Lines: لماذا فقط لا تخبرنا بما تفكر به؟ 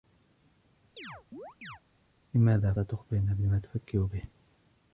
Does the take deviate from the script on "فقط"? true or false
true